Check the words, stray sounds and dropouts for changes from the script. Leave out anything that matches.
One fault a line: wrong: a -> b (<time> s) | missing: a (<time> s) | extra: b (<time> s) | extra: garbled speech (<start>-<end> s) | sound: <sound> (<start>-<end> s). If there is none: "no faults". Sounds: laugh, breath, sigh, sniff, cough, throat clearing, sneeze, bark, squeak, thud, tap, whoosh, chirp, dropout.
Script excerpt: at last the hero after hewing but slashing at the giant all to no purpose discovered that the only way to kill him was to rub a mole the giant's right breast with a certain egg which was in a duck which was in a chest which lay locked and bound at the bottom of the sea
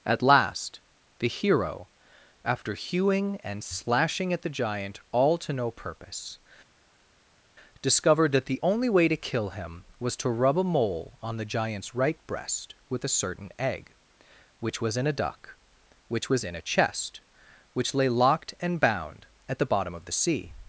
wrong: but -> and (3.4 s)
extra: on (11.2 s)